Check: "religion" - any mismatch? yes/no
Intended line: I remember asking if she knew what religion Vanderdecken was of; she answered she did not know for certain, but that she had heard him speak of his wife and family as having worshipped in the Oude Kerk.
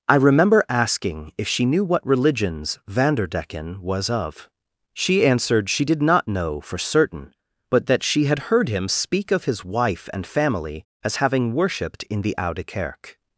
yes